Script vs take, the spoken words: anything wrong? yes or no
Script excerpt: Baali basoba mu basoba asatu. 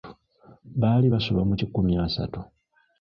yes